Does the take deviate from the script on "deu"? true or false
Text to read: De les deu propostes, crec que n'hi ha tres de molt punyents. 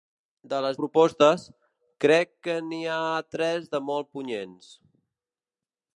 true